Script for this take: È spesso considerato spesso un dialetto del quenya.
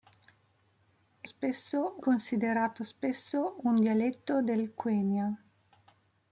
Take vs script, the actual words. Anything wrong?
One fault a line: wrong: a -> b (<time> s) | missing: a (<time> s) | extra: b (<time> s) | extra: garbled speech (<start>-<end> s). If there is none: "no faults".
no faults